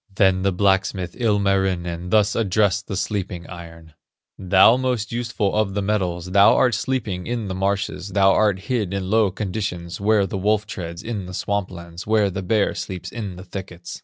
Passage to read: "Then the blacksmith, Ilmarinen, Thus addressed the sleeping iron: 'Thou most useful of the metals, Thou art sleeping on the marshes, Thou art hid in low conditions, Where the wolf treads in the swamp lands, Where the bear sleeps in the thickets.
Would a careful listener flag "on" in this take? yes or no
yes